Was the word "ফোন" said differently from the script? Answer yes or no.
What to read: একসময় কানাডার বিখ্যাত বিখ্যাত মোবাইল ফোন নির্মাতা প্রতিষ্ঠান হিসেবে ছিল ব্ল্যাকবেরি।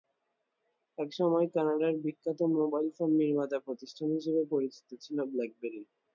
no